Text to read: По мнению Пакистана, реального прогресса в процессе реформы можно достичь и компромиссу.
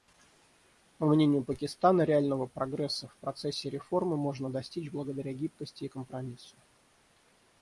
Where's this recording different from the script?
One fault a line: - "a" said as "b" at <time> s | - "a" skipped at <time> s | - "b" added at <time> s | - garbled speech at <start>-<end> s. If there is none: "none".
- "благодаря гибкости" added at 4.9 s